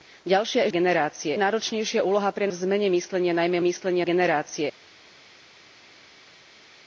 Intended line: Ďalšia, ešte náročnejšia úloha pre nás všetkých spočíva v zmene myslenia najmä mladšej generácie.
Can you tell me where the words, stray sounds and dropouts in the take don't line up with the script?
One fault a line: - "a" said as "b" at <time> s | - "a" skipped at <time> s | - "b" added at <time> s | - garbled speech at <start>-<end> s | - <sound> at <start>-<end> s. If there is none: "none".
- "ešte" said as "generácie" at 0.7 s
- "nás všetkých spočíva" skipped at 2.5 s
- "mladšej" said as "myslenia" at 3.6 s